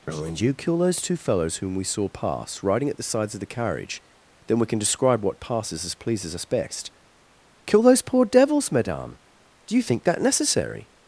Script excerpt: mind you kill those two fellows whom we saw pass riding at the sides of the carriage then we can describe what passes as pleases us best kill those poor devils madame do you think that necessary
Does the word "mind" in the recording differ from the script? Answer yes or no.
yes